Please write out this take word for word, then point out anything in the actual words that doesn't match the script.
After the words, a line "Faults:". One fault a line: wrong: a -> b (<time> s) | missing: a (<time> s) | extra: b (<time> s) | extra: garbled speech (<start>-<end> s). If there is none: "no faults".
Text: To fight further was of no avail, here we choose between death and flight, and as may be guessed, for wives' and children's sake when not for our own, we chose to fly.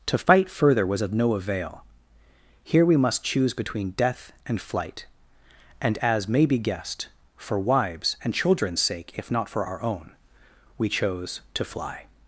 To fight further was of no avail, here we must choose between death and flight, and as may be guessed, for wives' and children's sake if not for our own, we chose to fly.
Faults:
extra: must (3.0 s)
wrong: when -> if (9.1 s)